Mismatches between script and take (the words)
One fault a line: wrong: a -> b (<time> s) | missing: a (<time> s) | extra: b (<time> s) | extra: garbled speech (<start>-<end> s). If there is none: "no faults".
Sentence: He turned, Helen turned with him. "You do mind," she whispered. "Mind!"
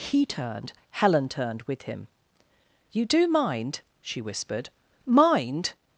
no faults